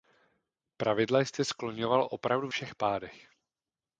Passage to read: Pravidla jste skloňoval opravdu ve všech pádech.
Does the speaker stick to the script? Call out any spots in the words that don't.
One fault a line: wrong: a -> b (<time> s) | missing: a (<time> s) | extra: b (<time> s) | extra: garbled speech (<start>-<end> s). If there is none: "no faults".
missing: ve (2.5 s)